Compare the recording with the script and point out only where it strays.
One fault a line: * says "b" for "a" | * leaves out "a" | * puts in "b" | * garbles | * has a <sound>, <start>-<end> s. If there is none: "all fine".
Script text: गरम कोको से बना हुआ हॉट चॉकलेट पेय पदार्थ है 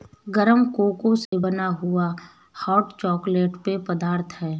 * has a dropout, 1.3-1.3 s